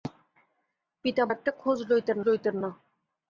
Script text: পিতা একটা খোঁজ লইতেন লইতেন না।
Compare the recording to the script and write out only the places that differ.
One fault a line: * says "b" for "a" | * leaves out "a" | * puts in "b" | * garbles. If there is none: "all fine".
all fine